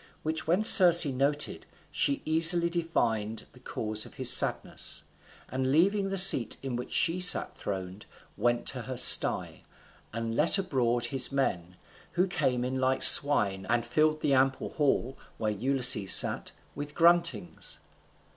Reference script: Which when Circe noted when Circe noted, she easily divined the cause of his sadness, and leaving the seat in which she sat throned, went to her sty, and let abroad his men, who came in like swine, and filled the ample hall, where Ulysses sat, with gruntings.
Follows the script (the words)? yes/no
no